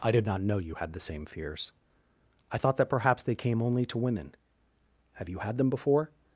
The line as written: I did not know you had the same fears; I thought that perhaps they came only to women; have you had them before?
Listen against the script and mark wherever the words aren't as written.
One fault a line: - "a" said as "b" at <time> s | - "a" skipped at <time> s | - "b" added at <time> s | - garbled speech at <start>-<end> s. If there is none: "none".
none